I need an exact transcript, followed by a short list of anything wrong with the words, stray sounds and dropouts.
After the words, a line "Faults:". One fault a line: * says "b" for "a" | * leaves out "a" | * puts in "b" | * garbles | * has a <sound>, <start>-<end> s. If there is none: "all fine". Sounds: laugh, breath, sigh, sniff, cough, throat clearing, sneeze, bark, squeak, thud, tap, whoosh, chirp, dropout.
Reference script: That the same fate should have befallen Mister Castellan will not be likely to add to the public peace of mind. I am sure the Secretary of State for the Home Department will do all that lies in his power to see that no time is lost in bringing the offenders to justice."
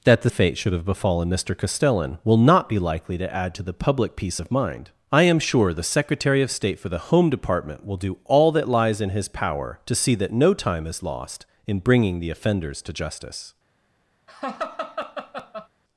That the fate should have befallen Mister Castellan will not be likely to add to the public peace of mind. I am sure the Secretary of State for the Home Department will do all that lies in his power to see that no time is lost in bringing the offenders to justice."
Faults:
* leaves out "same"
* has a laugh, 14.3-15.7 s